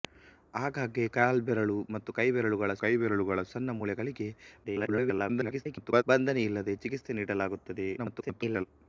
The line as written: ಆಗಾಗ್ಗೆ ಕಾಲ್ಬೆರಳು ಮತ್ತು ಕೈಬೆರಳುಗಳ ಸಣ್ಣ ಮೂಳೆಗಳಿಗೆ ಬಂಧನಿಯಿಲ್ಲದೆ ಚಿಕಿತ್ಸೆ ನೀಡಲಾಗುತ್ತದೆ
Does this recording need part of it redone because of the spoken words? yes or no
yes